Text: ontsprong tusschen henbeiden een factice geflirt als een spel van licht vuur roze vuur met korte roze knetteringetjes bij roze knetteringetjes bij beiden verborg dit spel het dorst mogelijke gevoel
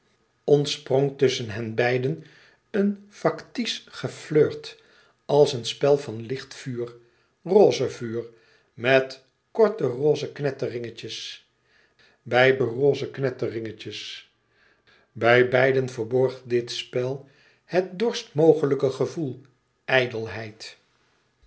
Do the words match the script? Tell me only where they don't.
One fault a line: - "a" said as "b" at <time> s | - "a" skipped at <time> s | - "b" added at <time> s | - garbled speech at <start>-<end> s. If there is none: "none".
none